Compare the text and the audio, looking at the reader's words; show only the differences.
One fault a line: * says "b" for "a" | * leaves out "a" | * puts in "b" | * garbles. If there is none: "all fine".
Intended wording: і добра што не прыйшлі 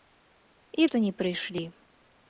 * leaves out "добра"